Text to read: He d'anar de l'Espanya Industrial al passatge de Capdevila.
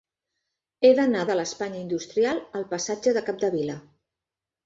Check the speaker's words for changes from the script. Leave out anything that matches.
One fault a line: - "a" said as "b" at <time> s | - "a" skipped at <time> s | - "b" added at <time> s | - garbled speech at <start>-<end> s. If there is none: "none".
none